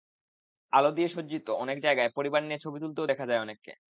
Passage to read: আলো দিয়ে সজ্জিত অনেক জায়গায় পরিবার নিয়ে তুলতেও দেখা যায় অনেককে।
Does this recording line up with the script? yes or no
no